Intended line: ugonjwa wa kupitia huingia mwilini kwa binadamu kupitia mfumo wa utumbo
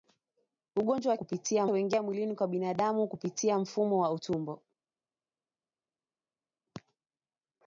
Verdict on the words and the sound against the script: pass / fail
pass